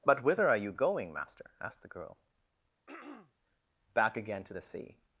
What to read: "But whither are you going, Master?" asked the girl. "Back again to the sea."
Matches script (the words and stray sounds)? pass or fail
fail